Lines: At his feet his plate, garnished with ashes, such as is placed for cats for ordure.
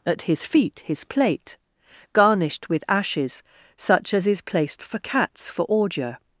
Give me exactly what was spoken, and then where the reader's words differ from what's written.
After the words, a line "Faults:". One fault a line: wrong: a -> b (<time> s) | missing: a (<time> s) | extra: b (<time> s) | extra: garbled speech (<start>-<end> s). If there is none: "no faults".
At his feet his plate, garnished with ashes, such as is placed for cats for ordure.
Faults:
no faults